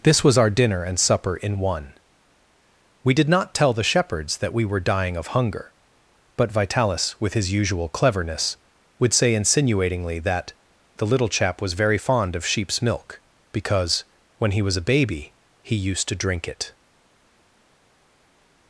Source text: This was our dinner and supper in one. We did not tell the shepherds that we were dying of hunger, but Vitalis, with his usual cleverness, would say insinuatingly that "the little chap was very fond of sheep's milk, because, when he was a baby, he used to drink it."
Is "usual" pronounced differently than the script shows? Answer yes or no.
no